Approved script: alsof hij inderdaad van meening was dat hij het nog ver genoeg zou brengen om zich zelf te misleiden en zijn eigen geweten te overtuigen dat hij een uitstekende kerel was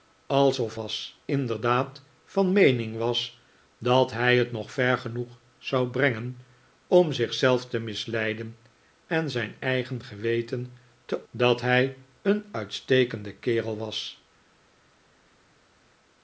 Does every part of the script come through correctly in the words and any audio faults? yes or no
no